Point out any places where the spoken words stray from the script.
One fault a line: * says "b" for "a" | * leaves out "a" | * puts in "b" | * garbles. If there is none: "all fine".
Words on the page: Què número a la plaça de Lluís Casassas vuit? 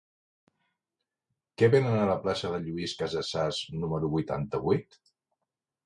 * says "venen" for "número"
* puts in "número vuitanta"